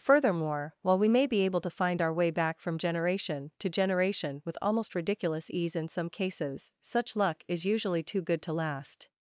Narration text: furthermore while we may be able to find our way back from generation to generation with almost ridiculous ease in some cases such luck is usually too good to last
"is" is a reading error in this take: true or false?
false